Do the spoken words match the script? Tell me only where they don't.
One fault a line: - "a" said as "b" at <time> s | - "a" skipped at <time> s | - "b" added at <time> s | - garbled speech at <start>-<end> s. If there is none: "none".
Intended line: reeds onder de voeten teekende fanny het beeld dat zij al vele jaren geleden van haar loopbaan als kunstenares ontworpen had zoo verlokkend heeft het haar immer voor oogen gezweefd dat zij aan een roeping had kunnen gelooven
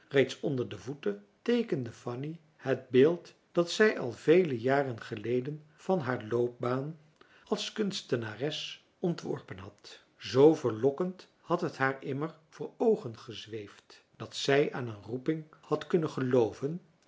- "heeft" said as "had" at 11.4 s